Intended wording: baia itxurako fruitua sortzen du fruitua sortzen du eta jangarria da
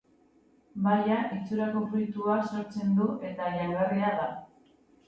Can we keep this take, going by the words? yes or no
no